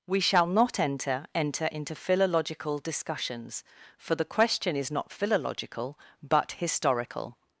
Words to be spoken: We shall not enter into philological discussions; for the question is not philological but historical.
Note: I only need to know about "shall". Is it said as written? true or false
true